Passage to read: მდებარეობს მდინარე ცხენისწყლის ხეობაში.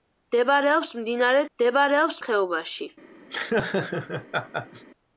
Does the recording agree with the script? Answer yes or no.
no